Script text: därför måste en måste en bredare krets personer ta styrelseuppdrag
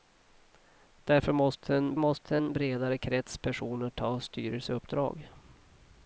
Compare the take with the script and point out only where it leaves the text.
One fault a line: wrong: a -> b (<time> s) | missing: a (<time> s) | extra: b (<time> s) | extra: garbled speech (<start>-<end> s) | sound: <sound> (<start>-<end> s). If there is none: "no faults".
no faults